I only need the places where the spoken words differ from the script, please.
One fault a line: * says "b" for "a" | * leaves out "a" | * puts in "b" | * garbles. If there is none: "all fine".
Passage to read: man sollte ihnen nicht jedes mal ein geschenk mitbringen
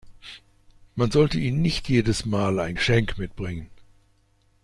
all fine